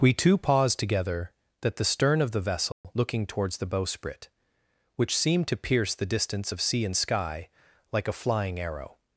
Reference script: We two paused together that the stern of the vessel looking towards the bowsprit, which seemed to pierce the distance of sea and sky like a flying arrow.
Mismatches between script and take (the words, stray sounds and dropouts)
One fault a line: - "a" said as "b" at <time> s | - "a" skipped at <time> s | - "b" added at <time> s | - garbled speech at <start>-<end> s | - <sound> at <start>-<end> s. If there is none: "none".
- dropout at 2.7-2.8 s